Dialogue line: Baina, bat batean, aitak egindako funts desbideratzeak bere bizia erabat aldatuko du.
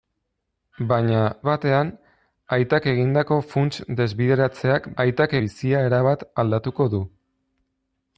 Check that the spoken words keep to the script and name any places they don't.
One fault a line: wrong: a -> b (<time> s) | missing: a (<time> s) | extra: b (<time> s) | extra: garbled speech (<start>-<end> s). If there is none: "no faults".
missing: bat (1.2 s)
wrong: bere -> aitak (5.0 s)